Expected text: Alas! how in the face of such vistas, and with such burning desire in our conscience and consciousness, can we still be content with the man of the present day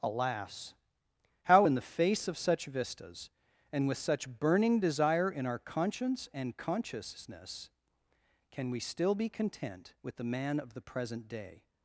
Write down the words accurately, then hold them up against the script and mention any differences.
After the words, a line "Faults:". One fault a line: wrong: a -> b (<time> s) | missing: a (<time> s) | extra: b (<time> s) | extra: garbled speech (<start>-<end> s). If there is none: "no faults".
Alas! how in the face of such vistas, and with such burning desire in our conscience and consciousness, can we still be content with the man of the present day
Faults:
no faults